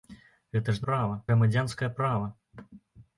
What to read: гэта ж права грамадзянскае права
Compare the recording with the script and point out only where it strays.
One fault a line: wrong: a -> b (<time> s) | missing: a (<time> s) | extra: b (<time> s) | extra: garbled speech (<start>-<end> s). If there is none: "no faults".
no faults